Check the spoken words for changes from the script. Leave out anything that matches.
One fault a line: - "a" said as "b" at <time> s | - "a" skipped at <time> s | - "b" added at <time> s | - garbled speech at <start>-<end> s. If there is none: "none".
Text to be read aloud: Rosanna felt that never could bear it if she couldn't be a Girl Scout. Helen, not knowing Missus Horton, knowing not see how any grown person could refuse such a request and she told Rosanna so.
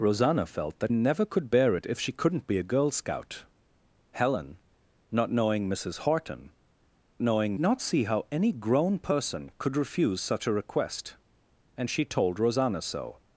none